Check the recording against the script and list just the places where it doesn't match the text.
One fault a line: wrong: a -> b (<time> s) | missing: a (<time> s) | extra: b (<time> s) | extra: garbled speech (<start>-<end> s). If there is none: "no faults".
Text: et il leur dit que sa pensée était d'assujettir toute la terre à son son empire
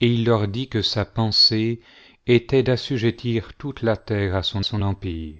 no faults